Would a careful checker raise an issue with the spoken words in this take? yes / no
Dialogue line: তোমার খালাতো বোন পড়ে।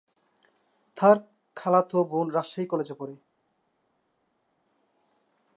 yes